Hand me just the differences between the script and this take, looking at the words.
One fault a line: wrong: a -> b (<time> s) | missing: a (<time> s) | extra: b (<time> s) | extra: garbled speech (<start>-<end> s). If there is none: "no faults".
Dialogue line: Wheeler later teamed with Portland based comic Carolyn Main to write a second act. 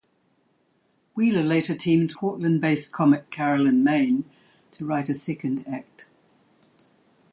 missing: with (2.1 s)